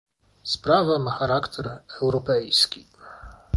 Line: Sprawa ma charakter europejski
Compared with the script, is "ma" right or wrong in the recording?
right